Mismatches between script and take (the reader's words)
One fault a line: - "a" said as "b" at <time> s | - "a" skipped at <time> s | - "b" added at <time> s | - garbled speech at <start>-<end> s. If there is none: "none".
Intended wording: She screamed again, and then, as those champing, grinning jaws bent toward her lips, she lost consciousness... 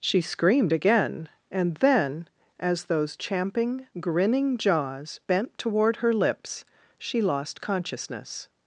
none